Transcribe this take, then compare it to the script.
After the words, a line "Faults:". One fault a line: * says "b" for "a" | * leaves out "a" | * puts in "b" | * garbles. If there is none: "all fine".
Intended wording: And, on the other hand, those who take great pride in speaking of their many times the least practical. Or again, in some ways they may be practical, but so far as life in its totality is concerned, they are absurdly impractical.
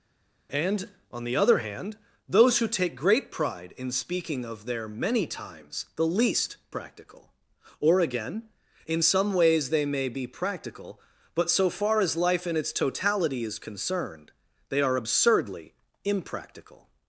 And, on the other hand, those who take great pride in speaking of their many times the least practical. Or again, in some ways they may be practical, but so far as life in its totality is concerned, they are absurdly impractical.
Faults:
all fine